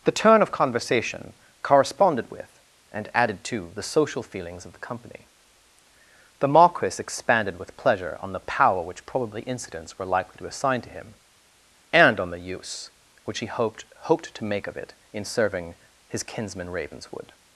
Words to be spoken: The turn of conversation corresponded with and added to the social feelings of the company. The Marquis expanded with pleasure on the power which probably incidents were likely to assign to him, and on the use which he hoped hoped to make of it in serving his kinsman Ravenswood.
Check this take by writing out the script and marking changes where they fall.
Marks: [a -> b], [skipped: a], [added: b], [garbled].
The turn of conversation corresponded with and added to the social feelings of the company. The Marquis expanded with pleasure on the power which probably incidents were likely to assign to him, and on the use which he hoped hoped to make of it in serving his kinsman Ravenswood.